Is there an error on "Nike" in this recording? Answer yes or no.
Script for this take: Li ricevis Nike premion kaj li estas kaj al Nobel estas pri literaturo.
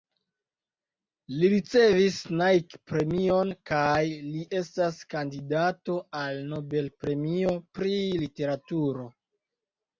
no